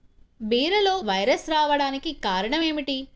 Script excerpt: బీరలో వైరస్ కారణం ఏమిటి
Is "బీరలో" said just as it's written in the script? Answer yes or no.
yes